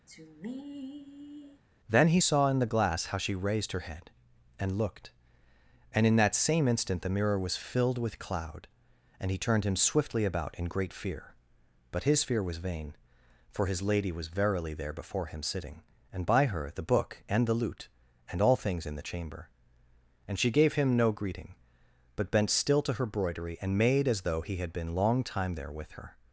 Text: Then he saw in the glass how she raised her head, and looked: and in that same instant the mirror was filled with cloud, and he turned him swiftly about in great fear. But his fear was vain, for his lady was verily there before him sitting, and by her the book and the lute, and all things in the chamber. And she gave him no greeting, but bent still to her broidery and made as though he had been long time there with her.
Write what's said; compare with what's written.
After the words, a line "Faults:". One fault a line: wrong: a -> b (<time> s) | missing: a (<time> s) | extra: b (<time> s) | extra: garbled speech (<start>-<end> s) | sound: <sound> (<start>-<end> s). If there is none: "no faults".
Then he saw in the glass how she raised her head, and looked: and in that same instant the mirror was filled with cloud, and he turned him swiftly about in great fear. But his fear was vain, for his lady was verily there before him sitting, and by her the book and the lute, and all things in the chamber. And she gave him no greeting, but bent still to her broidery and made as though he had been long time there with her.
Faults:
sound: sigh (0.1-1.6 s)